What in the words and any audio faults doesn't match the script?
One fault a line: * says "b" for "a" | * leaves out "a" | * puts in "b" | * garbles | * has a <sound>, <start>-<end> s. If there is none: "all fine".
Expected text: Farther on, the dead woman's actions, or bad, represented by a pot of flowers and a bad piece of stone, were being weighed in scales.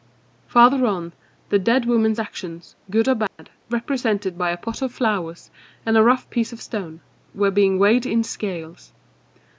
* puts in "good"
* has a dropout, 3.3-3.4 s
* says "rough" for "bad"